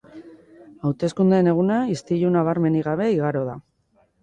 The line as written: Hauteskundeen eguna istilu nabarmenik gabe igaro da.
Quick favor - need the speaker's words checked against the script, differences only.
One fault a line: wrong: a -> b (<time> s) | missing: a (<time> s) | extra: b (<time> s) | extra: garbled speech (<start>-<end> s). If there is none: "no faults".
no faults